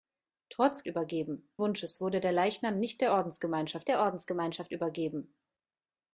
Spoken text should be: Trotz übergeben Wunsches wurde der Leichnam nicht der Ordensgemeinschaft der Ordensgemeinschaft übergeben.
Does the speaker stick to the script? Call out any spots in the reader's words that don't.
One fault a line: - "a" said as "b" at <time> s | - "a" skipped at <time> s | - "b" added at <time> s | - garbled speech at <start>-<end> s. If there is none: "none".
none